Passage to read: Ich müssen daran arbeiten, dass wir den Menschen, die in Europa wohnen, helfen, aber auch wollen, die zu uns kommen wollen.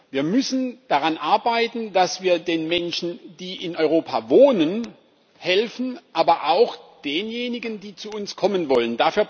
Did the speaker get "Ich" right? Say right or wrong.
wrong